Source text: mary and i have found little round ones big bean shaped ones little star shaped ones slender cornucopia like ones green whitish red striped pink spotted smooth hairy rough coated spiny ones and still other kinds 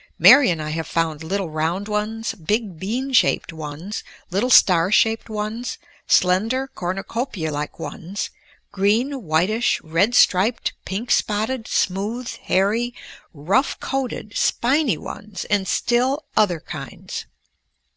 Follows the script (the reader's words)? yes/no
yes